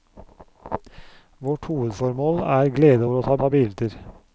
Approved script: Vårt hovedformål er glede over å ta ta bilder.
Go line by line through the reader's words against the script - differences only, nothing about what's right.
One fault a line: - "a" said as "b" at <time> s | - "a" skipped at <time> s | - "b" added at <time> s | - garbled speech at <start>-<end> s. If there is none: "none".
none